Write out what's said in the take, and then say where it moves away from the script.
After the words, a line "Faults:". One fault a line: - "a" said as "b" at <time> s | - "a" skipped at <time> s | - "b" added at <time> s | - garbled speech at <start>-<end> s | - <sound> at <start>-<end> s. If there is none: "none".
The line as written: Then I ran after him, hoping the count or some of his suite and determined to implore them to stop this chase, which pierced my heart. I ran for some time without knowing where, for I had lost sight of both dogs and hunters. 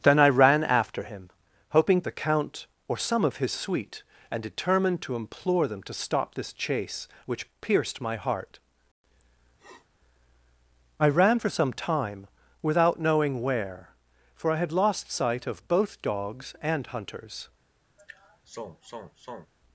Then I ran after him, hoping the count or some of his suite and determined to implore them to stop this chase, which pierced my heart. I ran for some time without knowing where, for I had lost sight of both dogs and hunters.
Faults:
- sniff at 9.6-9.9 s
- sigh at 18.0-19.5 s